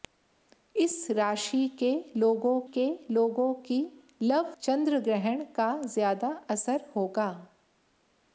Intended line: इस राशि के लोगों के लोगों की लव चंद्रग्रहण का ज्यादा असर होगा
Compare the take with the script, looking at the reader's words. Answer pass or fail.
pass